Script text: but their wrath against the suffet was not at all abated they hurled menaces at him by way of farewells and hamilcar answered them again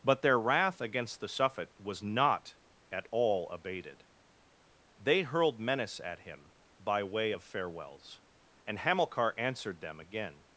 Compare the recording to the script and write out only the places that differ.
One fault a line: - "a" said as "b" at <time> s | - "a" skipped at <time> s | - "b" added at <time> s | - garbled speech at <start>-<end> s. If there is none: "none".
- "menaces" said as "menace" at 5.6 s